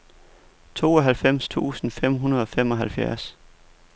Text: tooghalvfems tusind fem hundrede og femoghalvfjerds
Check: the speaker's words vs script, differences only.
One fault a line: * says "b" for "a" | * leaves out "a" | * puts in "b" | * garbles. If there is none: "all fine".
all fine